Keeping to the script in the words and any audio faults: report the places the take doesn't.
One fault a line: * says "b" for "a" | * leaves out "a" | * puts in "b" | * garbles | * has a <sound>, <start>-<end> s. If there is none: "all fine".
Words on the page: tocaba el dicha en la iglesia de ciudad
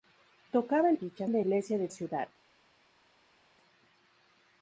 all fine